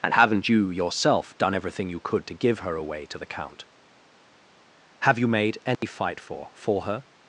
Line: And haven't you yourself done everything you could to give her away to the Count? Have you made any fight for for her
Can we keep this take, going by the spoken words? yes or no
yes